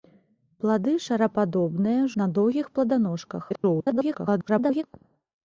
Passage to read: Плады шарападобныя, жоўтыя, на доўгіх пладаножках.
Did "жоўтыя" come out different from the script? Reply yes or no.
yes